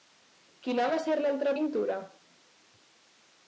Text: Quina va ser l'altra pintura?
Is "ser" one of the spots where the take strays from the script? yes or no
no